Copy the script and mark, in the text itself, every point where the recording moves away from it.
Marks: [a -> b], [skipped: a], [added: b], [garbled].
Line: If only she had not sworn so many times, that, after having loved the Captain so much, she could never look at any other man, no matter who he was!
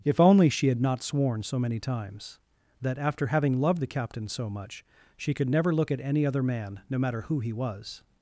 If only she had not sworn so many times, that, after having loved the Captain so much, she could never look at any other man, no matter who he was!